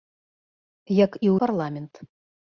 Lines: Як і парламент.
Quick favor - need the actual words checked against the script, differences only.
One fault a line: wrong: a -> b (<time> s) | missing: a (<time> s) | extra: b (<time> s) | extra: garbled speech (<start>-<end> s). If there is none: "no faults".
no faults